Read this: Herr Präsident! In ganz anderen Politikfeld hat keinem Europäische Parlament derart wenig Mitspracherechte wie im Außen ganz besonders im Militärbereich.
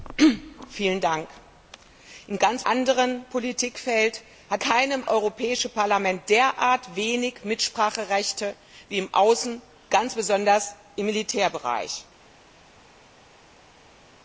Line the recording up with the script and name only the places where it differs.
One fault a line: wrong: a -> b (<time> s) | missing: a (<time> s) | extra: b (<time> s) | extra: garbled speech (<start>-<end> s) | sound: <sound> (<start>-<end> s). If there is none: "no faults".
no faults